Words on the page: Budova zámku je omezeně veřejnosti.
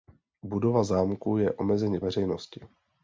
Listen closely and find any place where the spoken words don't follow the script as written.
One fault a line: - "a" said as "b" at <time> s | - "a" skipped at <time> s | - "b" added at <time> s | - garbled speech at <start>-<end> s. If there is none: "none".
none